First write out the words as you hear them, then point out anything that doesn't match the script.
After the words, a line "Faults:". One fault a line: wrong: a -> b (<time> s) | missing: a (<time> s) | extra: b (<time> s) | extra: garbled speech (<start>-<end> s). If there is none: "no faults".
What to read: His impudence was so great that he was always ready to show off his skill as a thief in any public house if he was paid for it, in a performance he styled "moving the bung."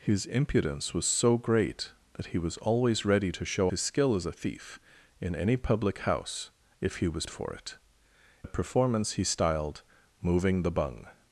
His impudence was so great that he was always ready to show his skill as a thief in any public house if he was for it, a performance he styled "moving the bung."
Faults:
missing: off (3.7 s)
missing: paid (7.2 s)
missing: in (7.8 s)